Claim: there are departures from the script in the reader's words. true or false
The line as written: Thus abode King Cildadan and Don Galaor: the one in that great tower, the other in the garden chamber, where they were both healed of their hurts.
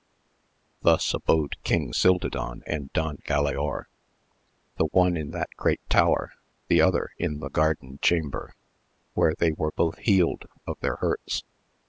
false